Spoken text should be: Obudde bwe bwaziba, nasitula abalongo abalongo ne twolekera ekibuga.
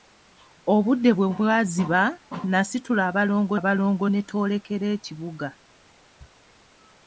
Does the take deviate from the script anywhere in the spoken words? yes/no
no